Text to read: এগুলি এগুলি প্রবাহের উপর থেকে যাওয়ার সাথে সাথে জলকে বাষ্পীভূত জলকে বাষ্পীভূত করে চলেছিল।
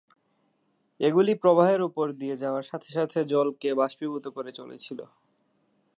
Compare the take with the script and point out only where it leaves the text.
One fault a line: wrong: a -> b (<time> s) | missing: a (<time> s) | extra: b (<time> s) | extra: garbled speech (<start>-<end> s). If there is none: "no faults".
missing: এগুলি (1.3 s)
wrong: থেকে -> দিয়ে (2.1 s)
missing: জলকে বাষ্পীভূত (4.2 s)